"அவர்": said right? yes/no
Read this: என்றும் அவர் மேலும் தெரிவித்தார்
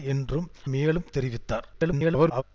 no